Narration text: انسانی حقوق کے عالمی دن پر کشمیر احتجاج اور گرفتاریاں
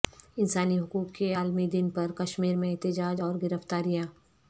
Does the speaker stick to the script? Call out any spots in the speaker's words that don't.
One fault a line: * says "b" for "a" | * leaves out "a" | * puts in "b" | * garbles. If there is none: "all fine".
* puts in "میں"